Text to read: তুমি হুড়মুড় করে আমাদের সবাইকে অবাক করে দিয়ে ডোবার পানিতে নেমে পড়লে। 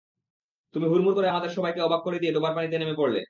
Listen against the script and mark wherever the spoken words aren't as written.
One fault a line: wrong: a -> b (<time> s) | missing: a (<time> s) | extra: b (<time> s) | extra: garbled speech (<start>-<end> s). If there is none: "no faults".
no faults